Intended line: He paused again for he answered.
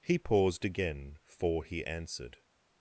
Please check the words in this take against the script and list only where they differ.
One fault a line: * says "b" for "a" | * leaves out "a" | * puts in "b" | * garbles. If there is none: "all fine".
all fine